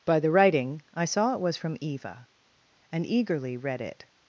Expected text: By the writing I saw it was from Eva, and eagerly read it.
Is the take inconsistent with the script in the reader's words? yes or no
no